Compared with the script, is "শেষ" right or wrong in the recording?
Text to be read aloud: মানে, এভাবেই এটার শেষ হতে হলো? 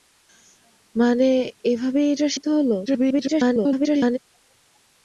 wrong